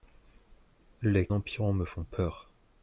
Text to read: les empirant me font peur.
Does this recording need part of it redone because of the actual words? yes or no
no